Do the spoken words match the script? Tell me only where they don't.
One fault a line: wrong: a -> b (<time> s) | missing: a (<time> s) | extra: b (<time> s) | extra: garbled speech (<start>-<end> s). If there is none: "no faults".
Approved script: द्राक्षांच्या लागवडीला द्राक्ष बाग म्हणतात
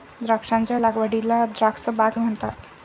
no faults